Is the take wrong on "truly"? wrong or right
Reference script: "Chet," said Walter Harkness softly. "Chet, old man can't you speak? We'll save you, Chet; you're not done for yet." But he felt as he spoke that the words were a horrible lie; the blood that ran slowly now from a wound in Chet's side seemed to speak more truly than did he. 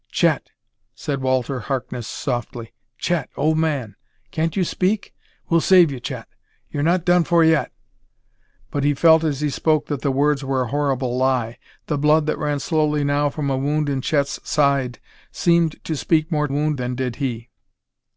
wrong